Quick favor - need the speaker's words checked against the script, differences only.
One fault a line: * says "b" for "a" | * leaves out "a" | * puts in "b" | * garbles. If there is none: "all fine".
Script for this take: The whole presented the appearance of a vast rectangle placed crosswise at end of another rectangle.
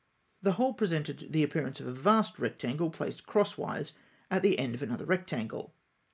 * puts in "the"